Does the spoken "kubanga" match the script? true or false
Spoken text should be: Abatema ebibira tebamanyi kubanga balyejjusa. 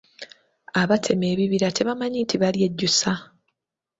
false